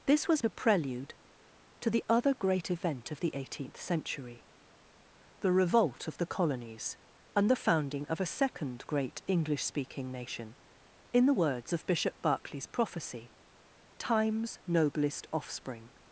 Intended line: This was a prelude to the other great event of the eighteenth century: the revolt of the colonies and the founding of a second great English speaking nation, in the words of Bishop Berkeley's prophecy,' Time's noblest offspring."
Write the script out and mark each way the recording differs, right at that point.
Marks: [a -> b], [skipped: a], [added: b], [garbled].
This was a prelude to the other great event of the eighteenth century: the revolt of the colonies and the founding of a second great English speaking nation, in the words of Bishop Berkeley's prophecy,' Time's noblest offspring."